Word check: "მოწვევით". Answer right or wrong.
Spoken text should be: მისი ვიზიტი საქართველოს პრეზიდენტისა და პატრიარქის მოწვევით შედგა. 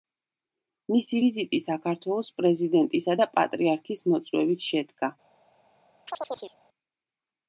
right